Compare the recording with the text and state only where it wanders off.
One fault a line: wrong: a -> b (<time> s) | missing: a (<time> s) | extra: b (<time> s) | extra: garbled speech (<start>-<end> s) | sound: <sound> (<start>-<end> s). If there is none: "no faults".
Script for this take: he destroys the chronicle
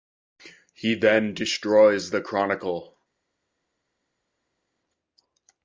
extra: then (0.9 s)